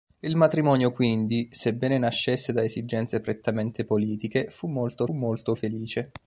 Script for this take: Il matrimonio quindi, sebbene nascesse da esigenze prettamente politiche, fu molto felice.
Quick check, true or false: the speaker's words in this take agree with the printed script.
false